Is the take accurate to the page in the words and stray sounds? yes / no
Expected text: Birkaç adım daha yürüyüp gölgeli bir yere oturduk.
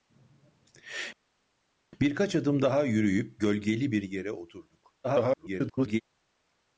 no